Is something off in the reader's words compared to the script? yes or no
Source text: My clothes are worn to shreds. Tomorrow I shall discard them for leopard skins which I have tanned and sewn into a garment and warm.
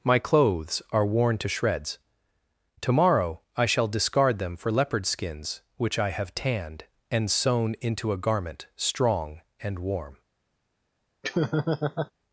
yes